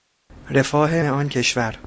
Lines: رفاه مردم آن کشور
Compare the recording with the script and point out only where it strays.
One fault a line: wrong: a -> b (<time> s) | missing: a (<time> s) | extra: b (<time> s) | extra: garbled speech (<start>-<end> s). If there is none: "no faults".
missing: مردم (1.0 s)